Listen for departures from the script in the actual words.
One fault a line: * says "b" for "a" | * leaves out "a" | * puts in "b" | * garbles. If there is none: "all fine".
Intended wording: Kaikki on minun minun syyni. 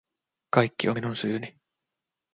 * leaves out "minun"